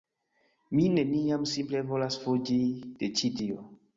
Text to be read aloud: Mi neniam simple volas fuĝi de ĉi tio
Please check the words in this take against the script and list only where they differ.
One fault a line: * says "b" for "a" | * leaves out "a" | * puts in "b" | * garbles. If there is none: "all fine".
all fine